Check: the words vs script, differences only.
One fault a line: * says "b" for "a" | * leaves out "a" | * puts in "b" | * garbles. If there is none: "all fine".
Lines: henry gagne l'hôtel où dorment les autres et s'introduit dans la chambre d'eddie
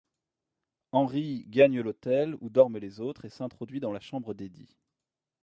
all fine